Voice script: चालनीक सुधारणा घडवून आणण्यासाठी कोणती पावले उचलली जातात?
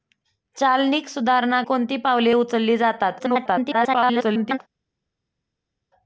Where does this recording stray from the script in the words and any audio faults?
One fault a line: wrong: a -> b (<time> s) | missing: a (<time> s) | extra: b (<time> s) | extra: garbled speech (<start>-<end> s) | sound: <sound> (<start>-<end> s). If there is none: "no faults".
missing: घडवून आणण्यासाठी (1.6 s)
extra: garbled speech (3.2-4.6 s)